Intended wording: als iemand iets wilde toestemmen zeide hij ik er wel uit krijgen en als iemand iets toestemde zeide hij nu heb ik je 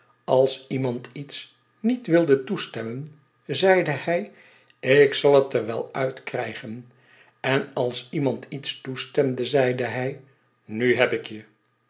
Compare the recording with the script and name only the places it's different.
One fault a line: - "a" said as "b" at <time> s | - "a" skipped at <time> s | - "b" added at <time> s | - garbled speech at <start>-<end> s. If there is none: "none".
- "niet" added at 1.8 s
- "zal het" added at 5.1 s